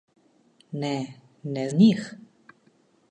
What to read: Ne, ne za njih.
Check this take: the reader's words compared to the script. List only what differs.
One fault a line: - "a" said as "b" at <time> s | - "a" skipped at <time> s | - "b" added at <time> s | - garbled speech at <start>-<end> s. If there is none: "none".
- "za" skipped at 1.7 s